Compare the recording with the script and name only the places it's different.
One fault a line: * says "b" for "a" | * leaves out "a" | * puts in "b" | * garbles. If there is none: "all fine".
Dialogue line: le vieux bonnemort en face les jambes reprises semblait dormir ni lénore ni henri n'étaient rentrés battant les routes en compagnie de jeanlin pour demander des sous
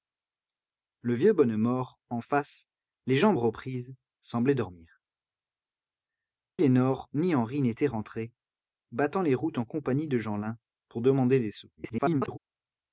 * leaves out "ni"
* garbles